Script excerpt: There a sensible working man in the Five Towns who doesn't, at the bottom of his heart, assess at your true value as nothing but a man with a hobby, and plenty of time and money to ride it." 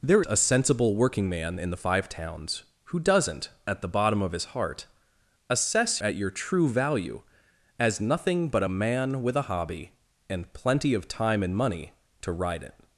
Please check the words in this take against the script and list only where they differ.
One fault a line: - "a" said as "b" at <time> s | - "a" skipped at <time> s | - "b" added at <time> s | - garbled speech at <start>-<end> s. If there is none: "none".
none